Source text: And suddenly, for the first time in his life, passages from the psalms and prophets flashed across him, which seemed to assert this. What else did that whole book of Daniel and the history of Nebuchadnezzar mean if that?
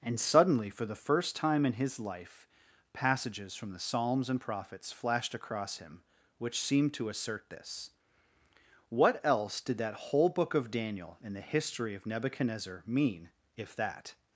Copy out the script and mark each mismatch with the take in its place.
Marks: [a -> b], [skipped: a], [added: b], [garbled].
And suddenly, for the first time in his life, passages from the psalms and prophets flashed across him, which seemed to assert this. What else did that whole book of Daniel and the history of Nebuchadnezzar mean if that?